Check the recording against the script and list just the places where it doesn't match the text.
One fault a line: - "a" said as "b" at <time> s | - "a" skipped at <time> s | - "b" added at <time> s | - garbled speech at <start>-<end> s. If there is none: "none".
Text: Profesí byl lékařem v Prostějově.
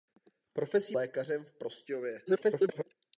- "byl" skipped at 0.9 s
- garbled speech at 2.3-2.8 s